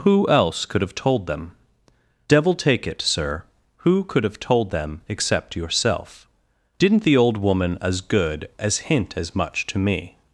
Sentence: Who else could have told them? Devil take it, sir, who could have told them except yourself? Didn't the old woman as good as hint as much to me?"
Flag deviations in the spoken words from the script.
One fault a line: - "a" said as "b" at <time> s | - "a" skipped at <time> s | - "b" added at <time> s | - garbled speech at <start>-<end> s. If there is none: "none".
none